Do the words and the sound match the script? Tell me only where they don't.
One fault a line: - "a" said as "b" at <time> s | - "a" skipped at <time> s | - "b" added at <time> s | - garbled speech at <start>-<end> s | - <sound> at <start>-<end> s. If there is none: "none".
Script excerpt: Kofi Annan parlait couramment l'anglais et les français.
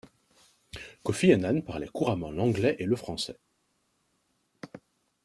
- "les" said as "le" at 2.9 s